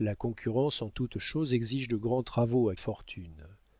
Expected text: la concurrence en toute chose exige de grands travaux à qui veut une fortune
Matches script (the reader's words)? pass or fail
fail